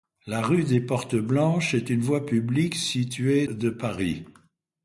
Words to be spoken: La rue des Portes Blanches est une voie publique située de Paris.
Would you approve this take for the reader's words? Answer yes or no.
yes